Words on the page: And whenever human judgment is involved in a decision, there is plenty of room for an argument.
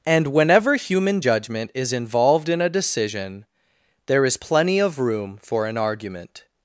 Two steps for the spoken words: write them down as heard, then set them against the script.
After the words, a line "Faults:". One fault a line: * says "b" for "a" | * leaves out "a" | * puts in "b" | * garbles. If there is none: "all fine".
And whenever human judgment is involved in a decision, there is plenty of room for an argument.
Faults:
all fine